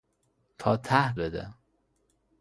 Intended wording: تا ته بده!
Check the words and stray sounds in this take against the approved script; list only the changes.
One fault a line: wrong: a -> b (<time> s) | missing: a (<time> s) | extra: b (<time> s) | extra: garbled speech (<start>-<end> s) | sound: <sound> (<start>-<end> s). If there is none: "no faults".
no faults